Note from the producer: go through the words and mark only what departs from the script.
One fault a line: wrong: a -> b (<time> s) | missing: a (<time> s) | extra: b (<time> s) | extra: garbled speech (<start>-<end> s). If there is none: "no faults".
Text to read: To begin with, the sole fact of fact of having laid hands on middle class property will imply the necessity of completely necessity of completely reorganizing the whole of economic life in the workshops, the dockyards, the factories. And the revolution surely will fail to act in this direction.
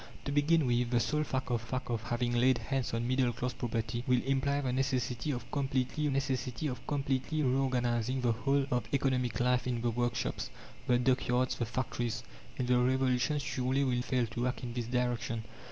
no faults